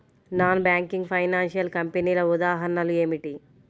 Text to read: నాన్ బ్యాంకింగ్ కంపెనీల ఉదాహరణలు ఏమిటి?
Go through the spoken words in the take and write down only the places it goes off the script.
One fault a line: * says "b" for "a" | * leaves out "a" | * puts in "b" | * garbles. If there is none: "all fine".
* puts in "ఫైనాన్షియల్"